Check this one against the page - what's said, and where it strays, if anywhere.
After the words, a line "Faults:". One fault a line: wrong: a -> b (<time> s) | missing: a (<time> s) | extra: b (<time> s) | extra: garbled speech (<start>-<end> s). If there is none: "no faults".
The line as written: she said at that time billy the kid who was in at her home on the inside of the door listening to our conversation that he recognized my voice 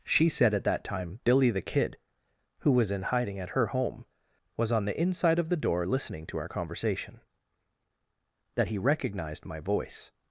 she said at that time billy the kid who was in hiding at her home was on the inside of the door listening to our conversation that he recognized my voice
Faults:
extra: hiding (3.0 s)
extra: was (4.6 s)